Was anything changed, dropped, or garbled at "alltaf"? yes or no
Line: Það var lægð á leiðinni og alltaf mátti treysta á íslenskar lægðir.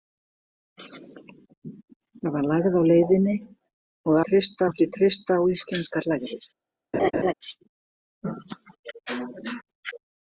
yes